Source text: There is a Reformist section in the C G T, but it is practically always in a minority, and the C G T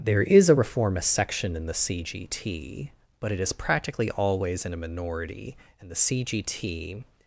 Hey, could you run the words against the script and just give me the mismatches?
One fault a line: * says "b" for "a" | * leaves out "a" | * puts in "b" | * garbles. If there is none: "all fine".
all fine